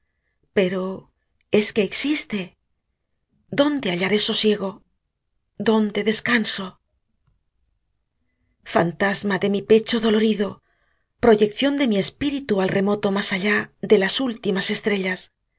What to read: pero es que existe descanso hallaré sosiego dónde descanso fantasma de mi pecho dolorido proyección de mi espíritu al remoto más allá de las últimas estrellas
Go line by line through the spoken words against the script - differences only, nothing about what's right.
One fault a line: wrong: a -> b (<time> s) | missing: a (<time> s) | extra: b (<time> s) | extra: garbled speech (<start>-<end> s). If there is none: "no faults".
wrong: descanso -> dónde (3.6 s)